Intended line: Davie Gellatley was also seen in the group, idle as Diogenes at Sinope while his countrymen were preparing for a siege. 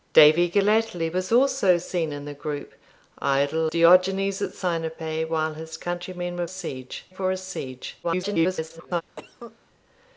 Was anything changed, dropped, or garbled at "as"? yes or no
yes